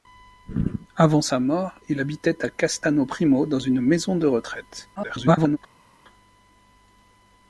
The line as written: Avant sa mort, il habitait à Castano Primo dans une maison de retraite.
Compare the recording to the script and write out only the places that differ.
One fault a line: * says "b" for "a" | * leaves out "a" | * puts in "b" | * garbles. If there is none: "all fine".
* garbles